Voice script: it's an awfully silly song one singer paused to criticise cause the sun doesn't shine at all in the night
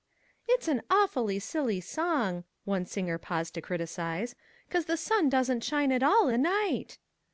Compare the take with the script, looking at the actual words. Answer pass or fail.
fail